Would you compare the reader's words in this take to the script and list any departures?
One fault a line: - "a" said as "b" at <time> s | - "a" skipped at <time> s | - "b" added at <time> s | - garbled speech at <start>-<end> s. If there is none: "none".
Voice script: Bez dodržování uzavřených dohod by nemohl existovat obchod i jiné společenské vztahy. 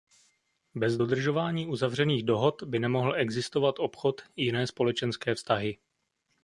none